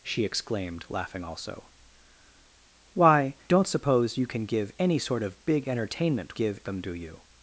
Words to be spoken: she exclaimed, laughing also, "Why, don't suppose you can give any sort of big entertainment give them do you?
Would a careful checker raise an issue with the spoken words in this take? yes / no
no